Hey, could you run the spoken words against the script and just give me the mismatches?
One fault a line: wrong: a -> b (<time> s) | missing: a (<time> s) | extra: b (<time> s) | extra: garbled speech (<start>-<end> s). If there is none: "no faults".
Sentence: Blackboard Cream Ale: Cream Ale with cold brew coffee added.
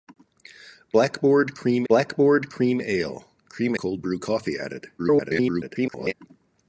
wrong: Ale -> blackboard (1.9 s)
wrong: with -> Cream (3.5 s)
extra: garbled speech (5.0-6.1 s)